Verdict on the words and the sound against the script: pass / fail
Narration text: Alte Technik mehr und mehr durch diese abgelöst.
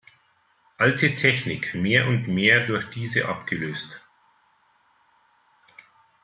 pass